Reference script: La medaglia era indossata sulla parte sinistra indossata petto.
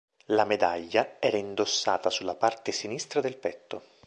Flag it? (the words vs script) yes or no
yes